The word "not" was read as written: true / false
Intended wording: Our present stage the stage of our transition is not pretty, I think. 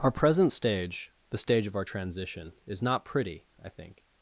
true